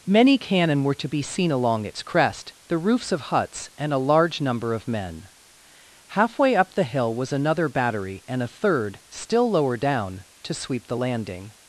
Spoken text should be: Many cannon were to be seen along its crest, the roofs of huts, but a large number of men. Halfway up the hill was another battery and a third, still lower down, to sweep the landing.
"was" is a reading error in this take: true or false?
false